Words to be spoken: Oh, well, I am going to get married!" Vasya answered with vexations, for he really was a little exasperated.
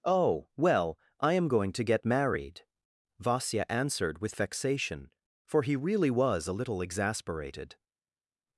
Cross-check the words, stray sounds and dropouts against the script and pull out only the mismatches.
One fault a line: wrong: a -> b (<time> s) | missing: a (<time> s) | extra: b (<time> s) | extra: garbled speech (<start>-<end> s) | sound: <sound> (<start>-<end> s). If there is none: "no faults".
wrong: vexations -> vexation (4.3 s)